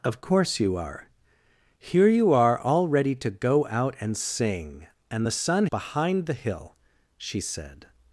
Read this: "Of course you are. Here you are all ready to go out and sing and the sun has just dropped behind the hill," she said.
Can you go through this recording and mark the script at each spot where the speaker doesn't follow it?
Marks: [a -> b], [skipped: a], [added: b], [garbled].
"Of course you are. Here you are all ready to go out and sing and the sun [skipped: has just dropped] behind the hill," she said.